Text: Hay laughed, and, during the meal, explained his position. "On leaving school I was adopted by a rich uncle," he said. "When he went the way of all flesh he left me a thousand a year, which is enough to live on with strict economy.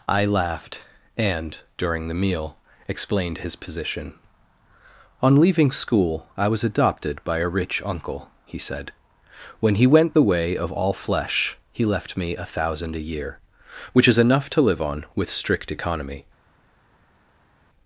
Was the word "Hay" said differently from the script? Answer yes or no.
yes